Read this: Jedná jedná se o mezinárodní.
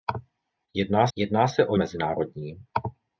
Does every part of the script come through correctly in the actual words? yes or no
yes